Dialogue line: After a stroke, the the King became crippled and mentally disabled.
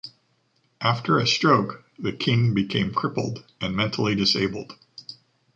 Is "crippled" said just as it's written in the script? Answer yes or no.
yes